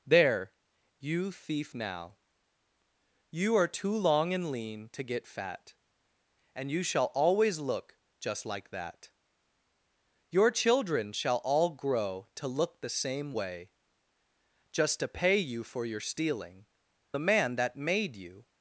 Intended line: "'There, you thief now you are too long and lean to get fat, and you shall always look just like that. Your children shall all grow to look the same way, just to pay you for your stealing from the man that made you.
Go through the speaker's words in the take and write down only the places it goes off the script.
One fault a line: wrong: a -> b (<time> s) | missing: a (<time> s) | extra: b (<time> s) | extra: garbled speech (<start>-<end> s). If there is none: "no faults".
missing: from (16.6 s)